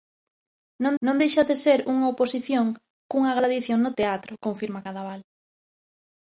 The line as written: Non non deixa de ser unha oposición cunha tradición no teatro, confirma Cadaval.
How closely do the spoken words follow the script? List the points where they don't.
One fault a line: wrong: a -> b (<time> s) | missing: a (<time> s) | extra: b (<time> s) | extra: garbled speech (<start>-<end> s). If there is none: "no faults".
no faults